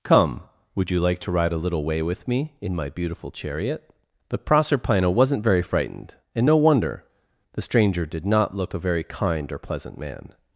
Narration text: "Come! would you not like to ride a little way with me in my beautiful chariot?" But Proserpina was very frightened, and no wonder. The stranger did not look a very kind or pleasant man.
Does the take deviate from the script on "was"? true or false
true